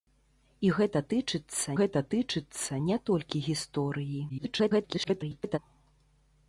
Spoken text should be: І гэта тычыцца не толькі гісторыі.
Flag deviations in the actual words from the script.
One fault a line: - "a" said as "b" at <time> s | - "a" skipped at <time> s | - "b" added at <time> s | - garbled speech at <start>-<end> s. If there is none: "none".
- "гэта тычыцца" added at 1.8 s
- garbled speech at 4.3-5.6 s